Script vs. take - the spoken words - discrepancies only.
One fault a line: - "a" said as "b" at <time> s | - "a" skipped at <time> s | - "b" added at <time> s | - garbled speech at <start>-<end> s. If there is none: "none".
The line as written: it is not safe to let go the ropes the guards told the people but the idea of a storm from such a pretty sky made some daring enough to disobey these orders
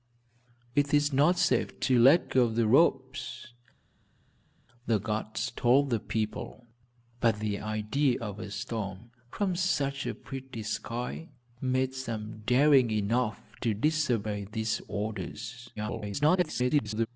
- garbled speech at 15.8-17.1 s